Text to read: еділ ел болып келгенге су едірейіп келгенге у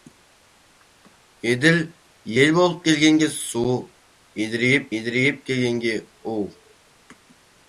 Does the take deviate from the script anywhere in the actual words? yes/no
yes